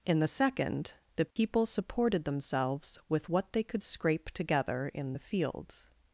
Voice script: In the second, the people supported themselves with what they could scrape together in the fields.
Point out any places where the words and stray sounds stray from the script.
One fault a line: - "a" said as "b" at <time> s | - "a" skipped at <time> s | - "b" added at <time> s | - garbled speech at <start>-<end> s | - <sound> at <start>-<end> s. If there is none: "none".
- dropout at 1.3-1.4 s